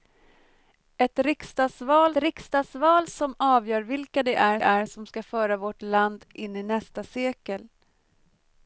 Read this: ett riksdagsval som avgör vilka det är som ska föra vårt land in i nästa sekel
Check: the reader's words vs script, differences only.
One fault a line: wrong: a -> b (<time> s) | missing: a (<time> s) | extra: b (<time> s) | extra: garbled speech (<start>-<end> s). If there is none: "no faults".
extra: riksdagsval (2.2 s)
extra: är (4.6 s)